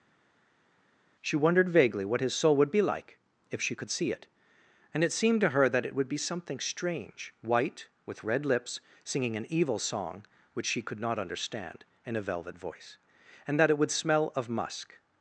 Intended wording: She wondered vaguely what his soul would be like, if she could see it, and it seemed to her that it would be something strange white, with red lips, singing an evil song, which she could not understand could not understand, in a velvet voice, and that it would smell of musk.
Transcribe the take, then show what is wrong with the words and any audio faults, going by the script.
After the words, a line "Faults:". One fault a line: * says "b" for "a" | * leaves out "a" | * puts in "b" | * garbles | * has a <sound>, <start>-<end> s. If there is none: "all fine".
She wondered vaguely what his soul would be like, if she could see it, and it seemed to her that it would be something strange white, with red lips, singing an evil song, which she could not understand, in a velvet voice, and that it would smell of musk.
Faults:
* leaves out "could not understand"